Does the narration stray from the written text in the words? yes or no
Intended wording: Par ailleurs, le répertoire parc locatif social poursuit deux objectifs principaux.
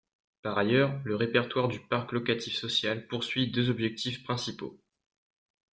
yes